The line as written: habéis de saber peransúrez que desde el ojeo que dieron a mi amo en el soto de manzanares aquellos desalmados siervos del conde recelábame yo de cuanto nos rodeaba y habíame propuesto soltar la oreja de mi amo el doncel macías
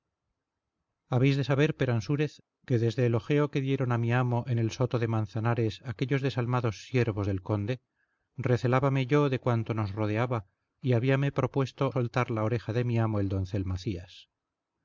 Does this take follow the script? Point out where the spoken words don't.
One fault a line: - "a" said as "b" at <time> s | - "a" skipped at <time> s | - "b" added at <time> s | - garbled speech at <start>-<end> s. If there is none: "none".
none